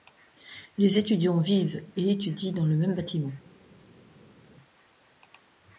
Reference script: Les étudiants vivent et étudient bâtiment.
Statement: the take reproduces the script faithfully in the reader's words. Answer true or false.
false